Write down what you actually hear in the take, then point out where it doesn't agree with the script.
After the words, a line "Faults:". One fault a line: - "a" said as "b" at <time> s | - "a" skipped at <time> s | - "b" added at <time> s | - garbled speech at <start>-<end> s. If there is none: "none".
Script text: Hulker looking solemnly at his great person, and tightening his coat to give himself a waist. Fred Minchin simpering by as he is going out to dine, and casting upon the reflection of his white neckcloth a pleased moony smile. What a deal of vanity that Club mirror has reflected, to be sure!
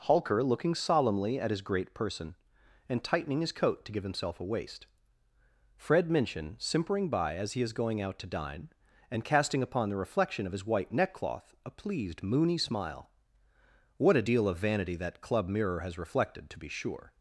Hulker looking solemnly at his great person, and tightening his coat to give himself a waist. Fred Minchin simpering by as he is going out to dine, and casting upon the reflection of his white neckcloth a pleased moony smile. What a deal of vanity that Club mirror has reflected, to be sure!
Faults:
none